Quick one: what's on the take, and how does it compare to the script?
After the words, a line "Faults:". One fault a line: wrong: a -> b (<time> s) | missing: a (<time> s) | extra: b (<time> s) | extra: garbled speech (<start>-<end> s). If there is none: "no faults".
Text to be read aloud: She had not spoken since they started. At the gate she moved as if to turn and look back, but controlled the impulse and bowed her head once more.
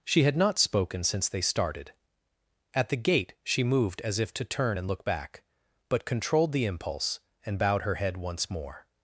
She had not spoken since they started. At the gate she moved as if to turn and look back, but controlled the impulse and bowed her head once more.
Faults:
no faults